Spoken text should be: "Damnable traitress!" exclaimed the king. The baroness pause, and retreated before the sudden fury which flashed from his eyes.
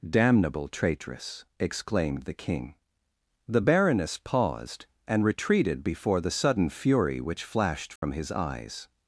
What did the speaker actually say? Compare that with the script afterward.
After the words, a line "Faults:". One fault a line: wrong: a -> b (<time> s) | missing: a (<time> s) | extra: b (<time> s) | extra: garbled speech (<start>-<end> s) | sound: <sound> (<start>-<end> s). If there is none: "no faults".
"Damnable traitress!" exclaimed the king. The baroness paused, and retreated before the sudden fury which flashed from his eyes.
Faults:
wrong: pause -> paused (4.2 s)
sound: dropout (8.0-8.0 s)